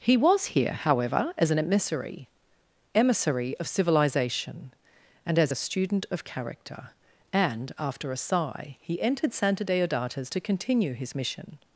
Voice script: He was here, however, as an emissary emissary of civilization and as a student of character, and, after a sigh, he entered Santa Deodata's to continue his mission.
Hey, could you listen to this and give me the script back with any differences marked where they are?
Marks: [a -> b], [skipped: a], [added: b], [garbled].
He was here, however, as an emissary emissary of civilization and as a student of character, and, after a sigh, he entered Santa Deodata's to continue his mission.